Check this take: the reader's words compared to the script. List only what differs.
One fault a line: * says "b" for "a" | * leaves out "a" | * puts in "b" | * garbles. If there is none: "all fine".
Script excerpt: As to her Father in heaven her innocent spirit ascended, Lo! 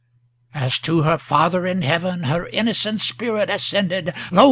all fine